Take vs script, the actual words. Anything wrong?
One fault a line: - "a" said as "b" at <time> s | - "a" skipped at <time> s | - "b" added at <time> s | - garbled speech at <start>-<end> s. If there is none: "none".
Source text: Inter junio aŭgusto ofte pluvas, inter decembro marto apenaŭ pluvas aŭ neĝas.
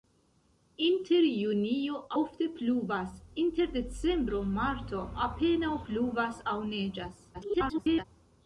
- "aŭgusto" skipped at 2.0 s
- garbled speech at 7.3-8.0 s